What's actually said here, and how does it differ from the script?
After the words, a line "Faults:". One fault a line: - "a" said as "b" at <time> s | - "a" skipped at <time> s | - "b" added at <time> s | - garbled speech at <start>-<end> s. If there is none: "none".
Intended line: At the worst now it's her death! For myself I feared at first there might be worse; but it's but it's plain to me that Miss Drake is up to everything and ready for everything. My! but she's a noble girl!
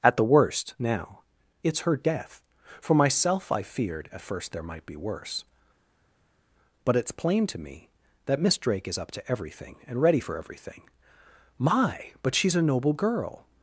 At the worst now it's her death! For myself I feared at first there might be worse; but it's plain to me that Miss Drake is up to everything and ready for everything. My! but she's a noble girl!
Faults:
- "but it's" skipped at 7.1 s